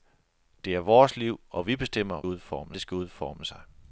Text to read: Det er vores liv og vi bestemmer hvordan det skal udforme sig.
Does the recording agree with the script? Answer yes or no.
no